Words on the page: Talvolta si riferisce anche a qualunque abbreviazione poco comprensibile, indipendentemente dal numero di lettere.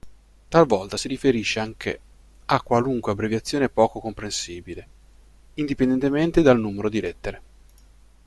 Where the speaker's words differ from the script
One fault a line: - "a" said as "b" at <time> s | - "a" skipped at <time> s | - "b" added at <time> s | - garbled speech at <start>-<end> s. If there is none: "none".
none